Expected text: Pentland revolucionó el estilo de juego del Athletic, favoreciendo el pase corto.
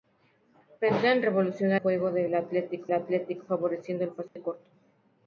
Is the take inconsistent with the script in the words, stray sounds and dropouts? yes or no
yes